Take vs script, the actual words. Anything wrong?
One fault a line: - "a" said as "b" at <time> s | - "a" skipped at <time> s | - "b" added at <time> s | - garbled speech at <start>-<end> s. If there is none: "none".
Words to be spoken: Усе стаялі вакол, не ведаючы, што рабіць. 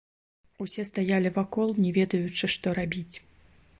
none